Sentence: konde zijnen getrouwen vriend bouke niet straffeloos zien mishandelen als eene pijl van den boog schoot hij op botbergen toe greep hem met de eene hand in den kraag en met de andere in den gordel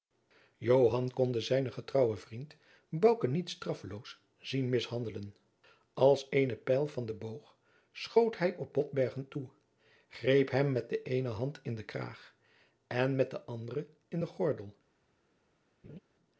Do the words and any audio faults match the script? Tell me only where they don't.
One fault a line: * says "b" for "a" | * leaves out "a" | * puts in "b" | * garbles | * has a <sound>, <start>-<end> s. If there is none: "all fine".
* has a laugh, 15.8-16.0 s